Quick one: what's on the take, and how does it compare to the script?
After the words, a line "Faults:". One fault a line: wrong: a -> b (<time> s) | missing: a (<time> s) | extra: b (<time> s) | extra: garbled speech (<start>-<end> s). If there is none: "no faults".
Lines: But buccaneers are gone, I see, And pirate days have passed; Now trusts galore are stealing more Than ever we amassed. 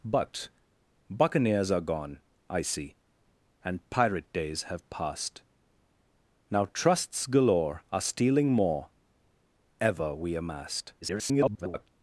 But buccaneers are gone, I see, And pirate days have passed; Now trusts galore are stealing more Ever we amassed. [garbled]
Faults:
missing: Than (8.9 s)
extra: garbled speech (11.0-11.9 s)